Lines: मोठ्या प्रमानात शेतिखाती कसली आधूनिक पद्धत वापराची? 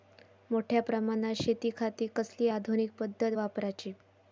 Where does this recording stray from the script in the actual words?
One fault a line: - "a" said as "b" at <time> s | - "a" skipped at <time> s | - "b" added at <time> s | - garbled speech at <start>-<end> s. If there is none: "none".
none